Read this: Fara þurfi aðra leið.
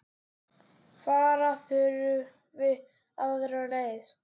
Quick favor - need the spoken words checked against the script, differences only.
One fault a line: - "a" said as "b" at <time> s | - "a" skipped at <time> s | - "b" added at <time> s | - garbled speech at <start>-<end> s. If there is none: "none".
none